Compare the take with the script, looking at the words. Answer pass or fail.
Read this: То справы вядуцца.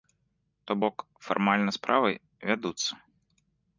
fail